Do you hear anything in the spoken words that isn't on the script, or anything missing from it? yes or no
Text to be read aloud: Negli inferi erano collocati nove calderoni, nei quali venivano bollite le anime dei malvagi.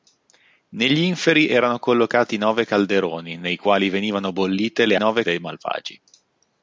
yes